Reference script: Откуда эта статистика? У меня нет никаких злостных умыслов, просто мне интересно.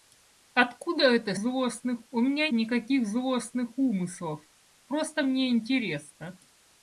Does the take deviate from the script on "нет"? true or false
true